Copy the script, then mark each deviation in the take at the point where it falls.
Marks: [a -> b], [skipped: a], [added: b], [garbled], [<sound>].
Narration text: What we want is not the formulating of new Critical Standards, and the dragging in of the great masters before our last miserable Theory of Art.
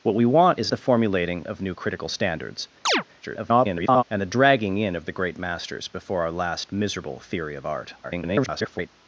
What we want is [skipped: not] the formulating of new Critical Standards, [chirp] [garbled] and the dragging in of the great masters before our last miserable Theory of Art. [garbled]